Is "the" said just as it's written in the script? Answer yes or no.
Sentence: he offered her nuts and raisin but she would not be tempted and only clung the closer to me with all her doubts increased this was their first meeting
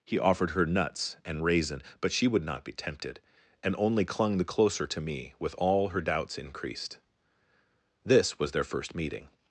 yes